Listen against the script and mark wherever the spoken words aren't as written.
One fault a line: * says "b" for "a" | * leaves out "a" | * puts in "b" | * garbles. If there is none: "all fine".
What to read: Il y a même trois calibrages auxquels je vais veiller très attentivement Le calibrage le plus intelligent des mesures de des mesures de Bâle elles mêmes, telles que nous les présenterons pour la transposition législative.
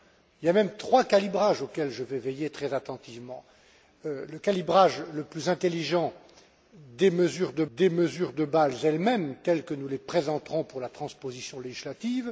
all fine